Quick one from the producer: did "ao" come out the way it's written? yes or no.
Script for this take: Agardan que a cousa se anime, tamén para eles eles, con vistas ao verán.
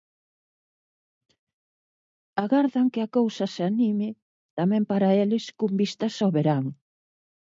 yes